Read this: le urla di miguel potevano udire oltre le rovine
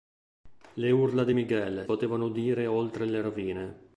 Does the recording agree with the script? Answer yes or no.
yes